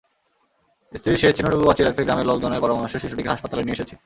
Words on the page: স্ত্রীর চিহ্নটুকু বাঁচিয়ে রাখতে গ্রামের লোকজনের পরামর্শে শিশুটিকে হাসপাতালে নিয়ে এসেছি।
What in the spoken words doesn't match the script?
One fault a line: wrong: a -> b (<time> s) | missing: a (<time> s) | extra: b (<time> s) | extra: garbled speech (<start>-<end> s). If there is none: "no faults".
extra: শেষ (1.2 s)